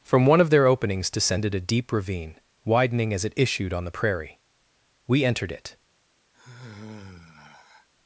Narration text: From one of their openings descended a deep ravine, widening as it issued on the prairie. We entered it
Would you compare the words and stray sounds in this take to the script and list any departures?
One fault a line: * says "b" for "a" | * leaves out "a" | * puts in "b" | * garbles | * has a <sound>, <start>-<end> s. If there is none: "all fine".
* has a sigh, 6.3-7.9 s